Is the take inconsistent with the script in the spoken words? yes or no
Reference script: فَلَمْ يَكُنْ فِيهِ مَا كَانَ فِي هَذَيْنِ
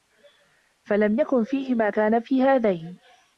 no